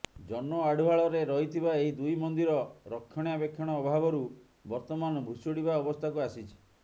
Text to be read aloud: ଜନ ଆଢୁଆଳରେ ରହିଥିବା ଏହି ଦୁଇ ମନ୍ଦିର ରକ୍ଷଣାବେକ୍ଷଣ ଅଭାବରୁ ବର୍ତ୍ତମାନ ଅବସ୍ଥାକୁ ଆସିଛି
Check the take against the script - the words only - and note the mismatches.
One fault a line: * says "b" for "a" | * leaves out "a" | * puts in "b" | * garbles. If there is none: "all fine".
* puts in "ଭୁଶୁଡିବା"